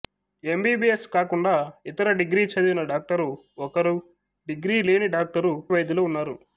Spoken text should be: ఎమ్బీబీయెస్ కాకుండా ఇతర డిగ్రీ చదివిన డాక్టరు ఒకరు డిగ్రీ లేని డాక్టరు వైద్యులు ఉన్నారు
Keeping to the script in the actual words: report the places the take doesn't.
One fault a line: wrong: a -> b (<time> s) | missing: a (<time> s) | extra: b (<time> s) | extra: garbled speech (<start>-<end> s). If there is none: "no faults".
no faults